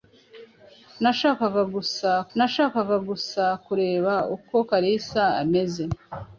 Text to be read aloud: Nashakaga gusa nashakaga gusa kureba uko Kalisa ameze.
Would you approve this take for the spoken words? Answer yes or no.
yes